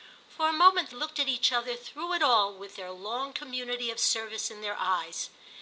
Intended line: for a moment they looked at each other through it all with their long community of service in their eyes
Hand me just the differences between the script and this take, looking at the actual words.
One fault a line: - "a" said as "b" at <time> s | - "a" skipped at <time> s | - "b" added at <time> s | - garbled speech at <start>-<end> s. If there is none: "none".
- "they" skipped at 0.9 s